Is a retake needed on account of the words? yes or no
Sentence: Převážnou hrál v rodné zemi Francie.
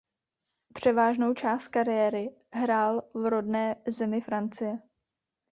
yes